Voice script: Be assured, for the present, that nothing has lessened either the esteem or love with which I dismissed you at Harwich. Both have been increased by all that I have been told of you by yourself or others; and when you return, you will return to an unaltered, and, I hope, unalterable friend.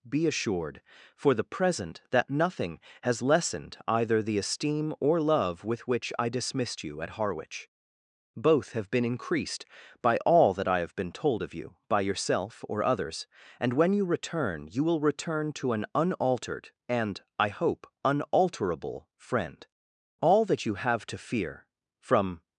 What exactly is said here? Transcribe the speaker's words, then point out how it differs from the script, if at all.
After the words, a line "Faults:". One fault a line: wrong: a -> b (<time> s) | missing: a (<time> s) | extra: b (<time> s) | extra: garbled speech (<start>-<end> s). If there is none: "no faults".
Be assured, for the present, that nothing has lessened either the esteem or love with which I dismissed you at Harwich. Both have been increased by all that I have been told of you by yourself or others; and when you return, you will return to an unaltered, and, I hope, unalterable friend. 'All that you have to fear from
Faults:
extra: All that you have to fear from (20.2 s)